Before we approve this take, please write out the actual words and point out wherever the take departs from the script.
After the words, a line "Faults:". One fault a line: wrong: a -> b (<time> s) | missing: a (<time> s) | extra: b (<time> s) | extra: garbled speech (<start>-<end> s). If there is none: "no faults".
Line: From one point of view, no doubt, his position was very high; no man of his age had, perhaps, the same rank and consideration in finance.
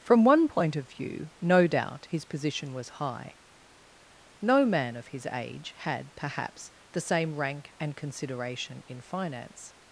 From one point of view, no doubt, his position was high; no man of his age had, perhaps, the same rank and consideration in finance.
Faults:
missing: very (3.0 s)